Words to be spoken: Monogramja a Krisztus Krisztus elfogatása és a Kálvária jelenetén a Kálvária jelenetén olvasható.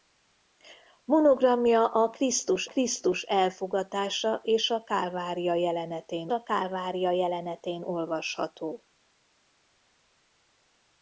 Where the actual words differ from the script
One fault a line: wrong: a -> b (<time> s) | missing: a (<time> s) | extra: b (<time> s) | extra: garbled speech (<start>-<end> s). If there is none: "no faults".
no faults